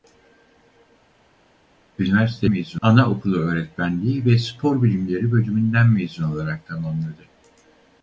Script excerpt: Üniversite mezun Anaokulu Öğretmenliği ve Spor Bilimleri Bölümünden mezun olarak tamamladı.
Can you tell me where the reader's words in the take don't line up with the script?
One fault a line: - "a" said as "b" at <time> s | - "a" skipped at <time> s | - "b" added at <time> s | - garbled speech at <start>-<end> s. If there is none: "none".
none